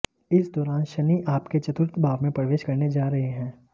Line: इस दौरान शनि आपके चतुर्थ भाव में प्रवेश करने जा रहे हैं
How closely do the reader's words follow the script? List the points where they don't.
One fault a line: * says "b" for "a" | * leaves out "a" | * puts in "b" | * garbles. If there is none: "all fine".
all fine